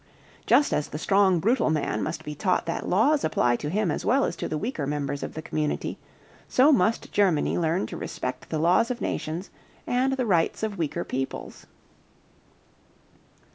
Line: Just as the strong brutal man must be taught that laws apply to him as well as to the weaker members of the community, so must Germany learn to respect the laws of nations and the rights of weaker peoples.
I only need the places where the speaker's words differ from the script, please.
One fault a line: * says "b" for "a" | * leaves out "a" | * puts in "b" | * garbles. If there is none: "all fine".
all fine